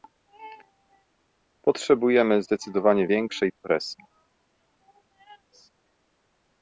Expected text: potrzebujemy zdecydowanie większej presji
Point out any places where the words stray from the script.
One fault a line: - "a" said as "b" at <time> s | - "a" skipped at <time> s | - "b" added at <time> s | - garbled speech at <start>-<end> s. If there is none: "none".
none